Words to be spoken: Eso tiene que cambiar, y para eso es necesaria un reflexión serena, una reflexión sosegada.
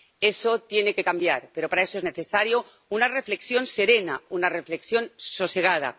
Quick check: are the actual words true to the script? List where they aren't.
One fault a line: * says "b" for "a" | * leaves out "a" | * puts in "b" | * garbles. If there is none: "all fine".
* says "pero" for "y"
* says "una" for "un"